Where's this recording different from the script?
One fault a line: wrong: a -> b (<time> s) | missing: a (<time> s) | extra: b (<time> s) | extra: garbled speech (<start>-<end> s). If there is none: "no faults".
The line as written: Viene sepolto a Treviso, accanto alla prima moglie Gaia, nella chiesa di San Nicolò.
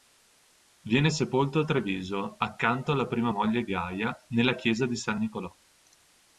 no faults